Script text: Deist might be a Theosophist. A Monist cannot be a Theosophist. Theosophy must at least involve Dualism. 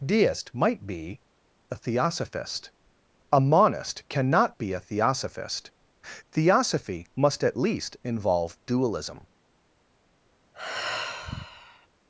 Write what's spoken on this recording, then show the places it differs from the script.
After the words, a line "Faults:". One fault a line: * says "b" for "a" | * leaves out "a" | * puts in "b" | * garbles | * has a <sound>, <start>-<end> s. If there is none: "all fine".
Deist might be a Theosophist. A Monist cannot be a Theosophist. Theosophy must at least involve Dualism.
Faults:
* has a sigh, 10.5-11.9 s